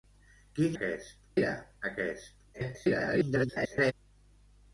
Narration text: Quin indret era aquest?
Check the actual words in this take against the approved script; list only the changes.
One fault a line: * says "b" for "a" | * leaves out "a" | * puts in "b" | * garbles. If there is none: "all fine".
* says "aquest" for "indret"
* garbles